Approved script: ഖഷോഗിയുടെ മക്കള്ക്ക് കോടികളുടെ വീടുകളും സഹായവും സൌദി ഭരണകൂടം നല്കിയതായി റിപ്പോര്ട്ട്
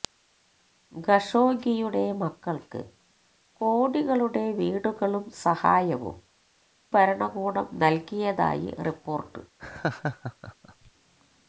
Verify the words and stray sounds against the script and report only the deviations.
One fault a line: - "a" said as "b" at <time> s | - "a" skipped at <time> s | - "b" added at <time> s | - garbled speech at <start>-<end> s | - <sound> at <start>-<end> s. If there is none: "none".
- "സൌദി" skipped at 6.2 s
- laugh at 9.6-10.9 s